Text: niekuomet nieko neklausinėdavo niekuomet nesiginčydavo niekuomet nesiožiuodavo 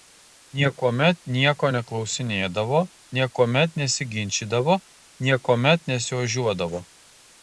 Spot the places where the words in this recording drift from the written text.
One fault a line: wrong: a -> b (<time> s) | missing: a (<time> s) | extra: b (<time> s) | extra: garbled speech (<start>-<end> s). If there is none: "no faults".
no faults